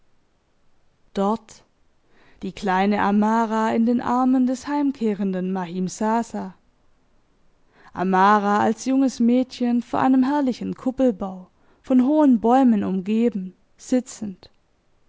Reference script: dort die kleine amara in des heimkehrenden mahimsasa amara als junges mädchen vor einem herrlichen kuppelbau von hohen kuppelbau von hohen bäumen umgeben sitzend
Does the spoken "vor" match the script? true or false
true